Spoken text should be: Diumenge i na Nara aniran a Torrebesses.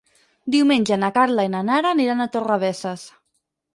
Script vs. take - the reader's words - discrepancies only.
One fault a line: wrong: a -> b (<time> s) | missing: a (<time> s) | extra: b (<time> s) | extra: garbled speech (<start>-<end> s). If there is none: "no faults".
extra: na Carla (1.0 s)